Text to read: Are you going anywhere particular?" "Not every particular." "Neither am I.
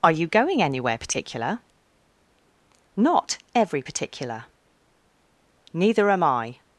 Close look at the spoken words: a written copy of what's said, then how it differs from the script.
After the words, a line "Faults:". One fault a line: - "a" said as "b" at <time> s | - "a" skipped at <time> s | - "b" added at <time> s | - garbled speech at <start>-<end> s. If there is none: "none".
Are you going anywhere particular?" "Not every particular." "Neither am I.
Faults:
none